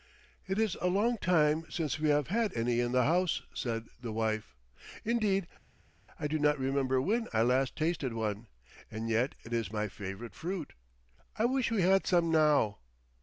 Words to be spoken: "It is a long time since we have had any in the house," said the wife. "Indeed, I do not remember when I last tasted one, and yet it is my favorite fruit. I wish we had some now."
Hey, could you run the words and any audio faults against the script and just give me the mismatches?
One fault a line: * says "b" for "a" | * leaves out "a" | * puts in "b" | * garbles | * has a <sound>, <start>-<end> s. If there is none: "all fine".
all fine